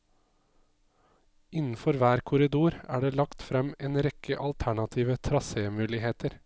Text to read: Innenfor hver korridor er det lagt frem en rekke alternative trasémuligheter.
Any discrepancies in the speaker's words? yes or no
no